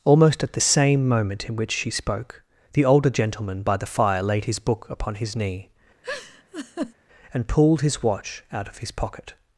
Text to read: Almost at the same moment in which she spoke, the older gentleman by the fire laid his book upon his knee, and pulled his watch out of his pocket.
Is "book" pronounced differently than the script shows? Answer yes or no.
no